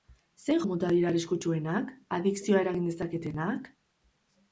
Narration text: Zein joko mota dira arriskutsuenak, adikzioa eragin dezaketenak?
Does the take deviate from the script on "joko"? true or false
true